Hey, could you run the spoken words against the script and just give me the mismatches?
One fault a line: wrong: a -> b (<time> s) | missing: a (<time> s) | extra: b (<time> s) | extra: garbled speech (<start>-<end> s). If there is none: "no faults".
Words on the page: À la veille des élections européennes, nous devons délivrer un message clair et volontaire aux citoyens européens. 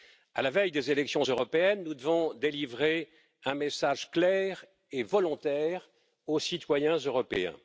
no faults